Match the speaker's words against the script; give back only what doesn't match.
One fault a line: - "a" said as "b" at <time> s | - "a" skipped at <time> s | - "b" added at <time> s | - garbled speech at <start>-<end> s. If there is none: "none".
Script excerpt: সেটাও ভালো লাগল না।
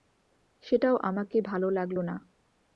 - "আমাকে" added at 1.0 s